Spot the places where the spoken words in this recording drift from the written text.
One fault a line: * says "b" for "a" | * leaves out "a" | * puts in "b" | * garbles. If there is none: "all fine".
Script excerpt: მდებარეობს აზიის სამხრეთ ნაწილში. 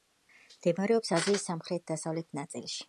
* puts in "დასავლეთ"